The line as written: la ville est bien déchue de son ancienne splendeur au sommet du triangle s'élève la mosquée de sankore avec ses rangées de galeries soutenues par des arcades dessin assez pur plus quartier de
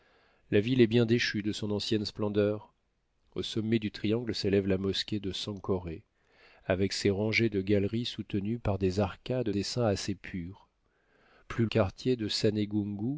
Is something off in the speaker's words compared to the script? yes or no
no